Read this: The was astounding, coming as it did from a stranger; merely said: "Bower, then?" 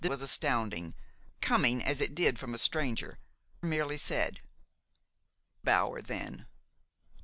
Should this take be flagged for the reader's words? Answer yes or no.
no